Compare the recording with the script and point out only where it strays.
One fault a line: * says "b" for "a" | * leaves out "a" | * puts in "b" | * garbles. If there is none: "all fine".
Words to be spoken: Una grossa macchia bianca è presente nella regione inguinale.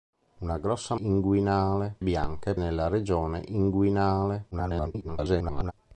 * says "inguinale" for "macchia"
* leaves out "presente"
* garbles